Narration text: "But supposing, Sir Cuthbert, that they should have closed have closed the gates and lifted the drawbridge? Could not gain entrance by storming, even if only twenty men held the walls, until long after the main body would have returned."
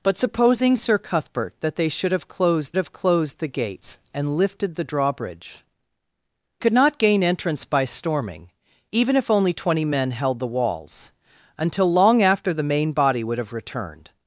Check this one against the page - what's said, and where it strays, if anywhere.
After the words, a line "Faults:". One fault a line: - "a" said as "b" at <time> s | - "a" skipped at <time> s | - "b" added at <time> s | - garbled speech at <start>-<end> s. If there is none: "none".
"But supposing, Sir Cuthbert, that they should have closed have closed the gates and lifted the drawbridge? Could not gain entrance by storming, even if only twenty men held the walls, until long after the main body would have returned."
Faults:
none